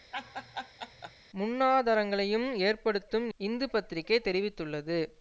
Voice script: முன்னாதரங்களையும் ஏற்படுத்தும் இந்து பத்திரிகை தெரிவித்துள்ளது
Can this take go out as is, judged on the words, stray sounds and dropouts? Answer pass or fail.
fail